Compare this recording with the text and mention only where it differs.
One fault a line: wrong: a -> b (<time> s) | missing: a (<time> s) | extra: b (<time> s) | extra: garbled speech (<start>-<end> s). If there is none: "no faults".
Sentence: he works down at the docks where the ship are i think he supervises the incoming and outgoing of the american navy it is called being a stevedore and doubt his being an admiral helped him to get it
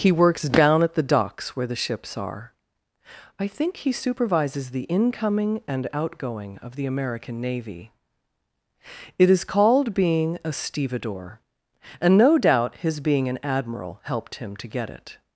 wrong: ship -> ships (1.8 s)
extra: no (12.2 s)